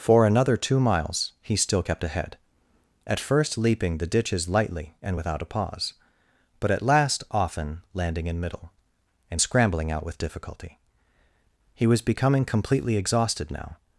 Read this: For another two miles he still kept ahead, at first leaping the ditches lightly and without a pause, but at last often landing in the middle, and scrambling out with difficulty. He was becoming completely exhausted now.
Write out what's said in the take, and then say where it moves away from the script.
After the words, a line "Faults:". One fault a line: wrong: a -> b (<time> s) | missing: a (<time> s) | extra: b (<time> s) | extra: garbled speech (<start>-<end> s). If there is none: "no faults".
For another two miles he still kept ahead, at first leaping the ditches lightly and without a pause, but at last often landing in middle, and scrambling out with difficulty. He was becoming completely exhausted now.
Faults:
missing: the (8.4 s)